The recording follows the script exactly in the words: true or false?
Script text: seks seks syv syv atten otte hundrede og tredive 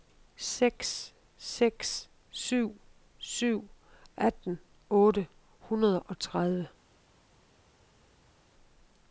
true